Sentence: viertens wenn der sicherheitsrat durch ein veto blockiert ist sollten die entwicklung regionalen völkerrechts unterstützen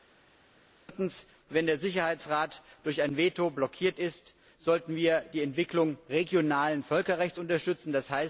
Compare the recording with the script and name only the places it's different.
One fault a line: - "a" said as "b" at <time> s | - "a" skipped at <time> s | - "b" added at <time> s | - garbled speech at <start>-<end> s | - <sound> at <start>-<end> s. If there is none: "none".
- "wir" added at 5.0 s